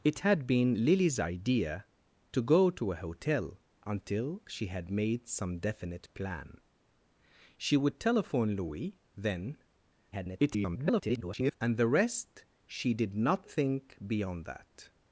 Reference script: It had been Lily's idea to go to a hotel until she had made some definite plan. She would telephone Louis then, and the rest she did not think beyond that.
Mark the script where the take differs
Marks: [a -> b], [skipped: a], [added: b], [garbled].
It had been Lily's idea to go to a hotel until she had made some definite plan. She would telephone Louis then, [garbled] and the rest she did not think beyond that.